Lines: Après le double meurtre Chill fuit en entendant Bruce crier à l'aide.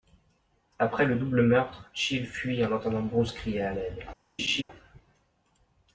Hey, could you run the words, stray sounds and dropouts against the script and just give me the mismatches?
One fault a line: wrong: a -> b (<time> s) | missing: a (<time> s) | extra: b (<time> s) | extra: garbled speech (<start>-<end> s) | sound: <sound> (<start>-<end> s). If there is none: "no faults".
sound: laugh (4.4-4.6 s)